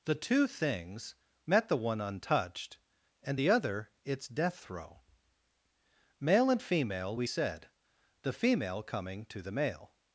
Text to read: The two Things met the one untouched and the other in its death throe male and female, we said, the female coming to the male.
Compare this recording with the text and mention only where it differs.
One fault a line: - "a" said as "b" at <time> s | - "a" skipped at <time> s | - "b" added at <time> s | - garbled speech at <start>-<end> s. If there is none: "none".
- "in" skipped at 3.9 s